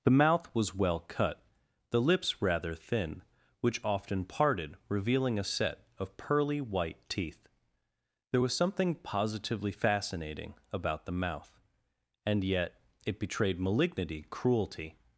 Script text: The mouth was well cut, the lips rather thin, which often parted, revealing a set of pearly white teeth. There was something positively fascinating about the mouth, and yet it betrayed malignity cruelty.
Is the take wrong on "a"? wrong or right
right